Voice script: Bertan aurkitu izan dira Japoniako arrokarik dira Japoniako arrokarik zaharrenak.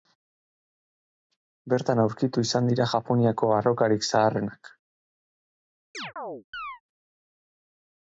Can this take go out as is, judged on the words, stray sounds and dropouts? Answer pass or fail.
fail